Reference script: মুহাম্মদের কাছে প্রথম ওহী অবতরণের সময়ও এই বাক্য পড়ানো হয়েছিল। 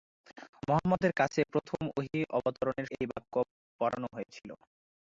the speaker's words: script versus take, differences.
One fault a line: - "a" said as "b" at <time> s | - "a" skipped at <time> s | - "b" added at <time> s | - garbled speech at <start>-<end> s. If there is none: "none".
- "সময়ও" skipped at 2.9 s